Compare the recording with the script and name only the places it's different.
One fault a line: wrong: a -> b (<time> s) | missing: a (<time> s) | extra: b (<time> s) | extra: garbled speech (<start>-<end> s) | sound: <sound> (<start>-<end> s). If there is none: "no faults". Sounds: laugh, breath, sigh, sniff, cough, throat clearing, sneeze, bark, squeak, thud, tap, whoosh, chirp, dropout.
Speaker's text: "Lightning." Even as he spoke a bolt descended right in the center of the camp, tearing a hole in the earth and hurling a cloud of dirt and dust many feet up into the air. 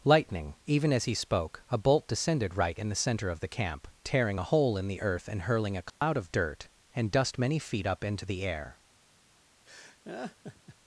sound: dropout (5.9-6.0 s)
sound: laugh (9.7-10.8 s)